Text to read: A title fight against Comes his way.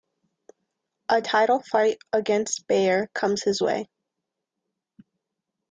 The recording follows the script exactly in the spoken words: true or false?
false